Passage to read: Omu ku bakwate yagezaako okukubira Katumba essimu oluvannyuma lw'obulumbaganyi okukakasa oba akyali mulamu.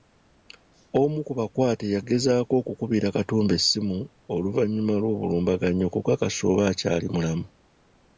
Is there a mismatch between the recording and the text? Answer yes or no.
no